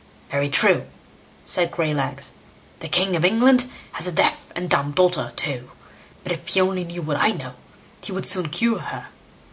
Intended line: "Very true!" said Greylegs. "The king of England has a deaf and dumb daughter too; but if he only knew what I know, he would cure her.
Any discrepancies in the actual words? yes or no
yes